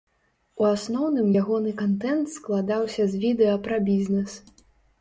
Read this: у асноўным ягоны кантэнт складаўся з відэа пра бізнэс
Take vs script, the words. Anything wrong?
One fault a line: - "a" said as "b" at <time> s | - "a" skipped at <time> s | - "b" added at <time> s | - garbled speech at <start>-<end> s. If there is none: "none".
none